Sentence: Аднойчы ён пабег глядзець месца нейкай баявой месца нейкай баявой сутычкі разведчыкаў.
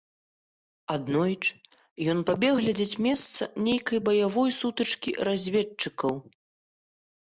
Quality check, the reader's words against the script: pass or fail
fail